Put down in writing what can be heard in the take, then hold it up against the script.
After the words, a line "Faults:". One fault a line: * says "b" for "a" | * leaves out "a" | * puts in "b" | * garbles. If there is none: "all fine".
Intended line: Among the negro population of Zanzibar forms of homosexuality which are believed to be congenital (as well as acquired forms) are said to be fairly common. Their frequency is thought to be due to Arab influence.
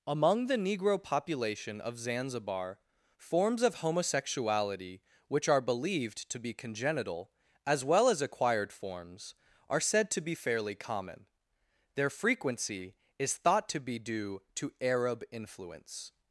Among the negro population of Zanzibar forms of homosexuality which are believed to be congenital (as well as acquired forms) are said to be fairly common. Their frequency is thought to be due to Arab influence.
Faults:
all fine